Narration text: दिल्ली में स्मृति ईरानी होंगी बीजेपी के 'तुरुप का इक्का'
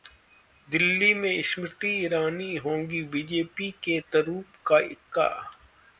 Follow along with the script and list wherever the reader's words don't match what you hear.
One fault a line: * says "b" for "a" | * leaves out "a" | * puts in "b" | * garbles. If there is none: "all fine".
all fine